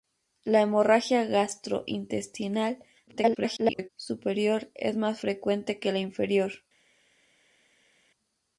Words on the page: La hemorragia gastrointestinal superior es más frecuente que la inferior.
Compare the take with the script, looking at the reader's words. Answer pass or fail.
fail